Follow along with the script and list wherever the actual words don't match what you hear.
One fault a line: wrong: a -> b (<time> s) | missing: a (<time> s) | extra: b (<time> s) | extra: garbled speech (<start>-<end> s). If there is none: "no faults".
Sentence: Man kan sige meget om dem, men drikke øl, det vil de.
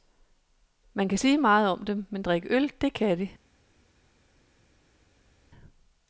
wrong: vil -> kan (2.9 s)